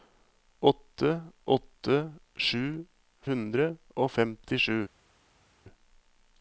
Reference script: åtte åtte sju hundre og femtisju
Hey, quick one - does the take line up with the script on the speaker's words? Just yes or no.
yes